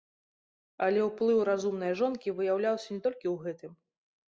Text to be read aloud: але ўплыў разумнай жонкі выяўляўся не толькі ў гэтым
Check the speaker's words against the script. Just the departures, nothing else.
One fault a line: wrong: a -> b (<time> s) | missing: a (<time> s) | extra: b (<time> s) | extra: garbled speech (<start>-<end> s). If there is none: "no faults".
no faults